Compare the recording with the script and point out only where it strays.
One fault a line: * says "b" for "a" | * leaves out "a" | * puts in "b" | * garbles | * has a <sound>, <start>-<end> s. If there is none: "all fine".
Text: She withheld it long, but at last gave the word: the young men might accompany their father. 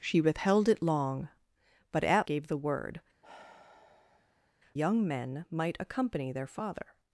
* leaves out "last"
* leaves out "the"
* has a sigh, 3.2-4.5 s